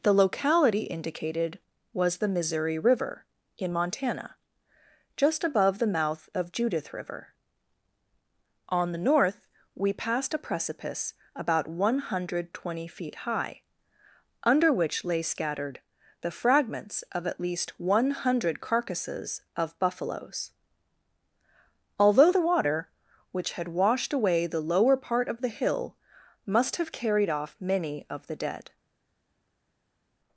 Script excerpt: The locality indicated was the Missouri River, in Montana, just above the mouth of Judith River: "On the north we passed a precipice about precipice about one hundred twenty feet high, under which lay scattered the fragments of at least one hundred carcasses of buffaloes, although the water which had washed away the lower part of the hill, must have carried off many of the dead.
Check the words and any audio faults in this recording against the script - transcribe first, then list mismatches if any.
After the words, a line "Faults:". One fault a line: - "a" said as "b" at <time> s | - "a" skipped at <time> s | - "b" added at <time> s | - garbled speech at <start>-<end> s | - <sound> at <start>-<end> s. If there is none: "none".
The locality indicated was the Missouri River, in Montana, just above the mouth of Judith River: "On the north we passed a precipice about one hundred twenty feet high, under which lay scattered the fragments of at least one hundred carcasses of buffaloes, although the water which had washed away the lower part of the hill, must have carried off many of the dead.
Faults:
- "precipice about" skipped at 11.7 s